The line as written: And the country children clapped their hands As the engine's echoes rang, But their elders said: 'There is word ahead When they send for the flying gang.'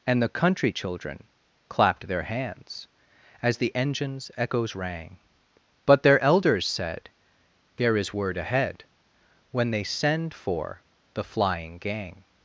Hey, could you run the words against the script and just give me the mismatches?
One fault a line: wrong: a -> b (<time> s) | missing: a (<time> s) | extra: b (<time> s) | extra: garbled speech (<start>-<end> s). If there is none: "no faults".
no faults